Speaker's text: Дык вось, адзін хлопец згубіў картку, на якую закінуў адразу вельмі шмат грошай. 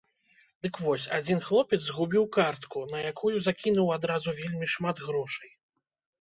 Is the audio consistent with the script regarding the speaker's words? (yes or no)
yes